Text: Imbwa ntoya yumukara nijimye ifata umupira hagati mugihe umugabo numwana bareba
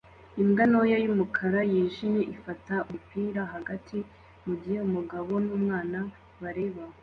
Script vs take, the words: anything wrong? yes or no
no